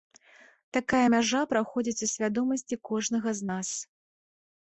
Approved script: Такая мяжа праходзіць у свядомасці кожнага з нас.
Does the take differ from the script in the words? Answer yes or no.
no